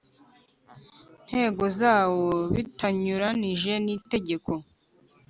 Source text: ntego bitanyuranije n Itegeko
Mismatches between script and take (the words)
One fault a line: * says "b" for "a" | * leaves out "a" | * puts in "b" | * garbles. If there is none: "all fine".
* puts in "zawo"